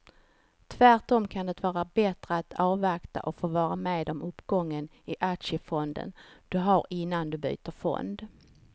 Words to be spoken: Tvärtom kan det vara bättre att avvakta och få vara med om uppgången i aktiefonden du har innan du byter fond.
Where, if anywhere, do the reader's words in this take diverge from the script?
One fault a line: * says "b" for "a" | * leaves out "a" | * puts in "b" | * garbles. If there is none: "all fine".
all fine